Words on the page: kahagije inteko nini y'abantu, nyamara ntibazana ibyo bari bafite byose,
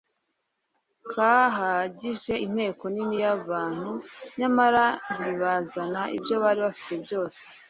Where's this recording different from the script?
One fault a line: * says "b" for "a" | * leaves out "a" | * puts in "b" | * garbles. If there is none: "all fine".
all fine